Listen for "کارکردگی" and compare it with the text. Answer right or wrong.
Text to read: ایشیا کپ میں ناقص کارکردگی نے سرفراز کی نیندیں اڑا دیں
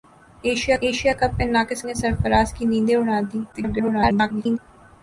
wrong